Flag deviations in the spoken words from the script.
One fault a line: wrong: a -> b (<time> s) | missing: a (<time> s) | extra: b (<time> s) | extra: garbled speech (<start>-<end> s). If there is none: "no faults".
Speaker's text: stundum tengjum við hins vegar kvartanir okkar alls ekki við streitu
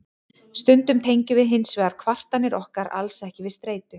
no faults